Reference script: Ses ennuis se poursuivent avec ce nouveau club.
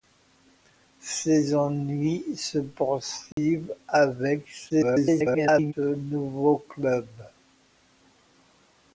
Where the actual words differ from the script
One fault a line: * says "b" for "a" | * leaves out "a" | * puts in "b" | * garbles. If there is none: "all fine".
* garbles